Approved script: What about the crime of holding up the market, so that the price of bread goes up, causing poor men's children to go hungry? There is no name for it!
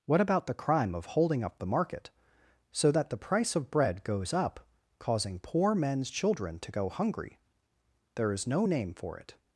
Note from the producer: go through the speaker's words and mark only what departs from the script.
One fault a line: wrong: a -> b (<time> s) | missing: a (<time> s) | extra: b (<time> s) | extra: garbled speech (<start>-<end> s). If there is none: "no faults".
no faults